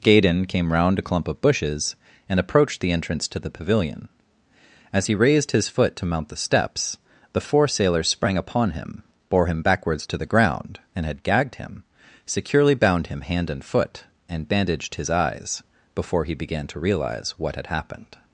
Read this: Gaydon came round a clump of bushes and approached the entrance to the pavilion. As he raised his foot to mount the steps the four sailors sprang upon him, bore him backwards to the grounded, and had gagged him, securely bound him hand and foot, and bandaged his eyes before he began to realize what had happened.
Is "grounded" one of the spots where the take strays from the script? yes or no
yes